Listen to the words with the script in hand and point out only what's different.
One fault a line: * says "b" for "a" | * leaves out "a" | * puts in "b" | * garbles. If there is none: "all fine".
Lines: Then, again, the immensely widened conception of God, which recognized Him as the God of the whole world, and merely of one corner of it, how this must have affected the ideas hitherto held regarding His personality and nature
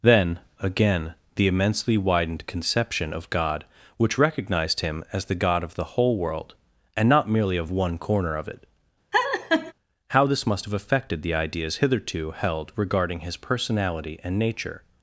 * puts in "not"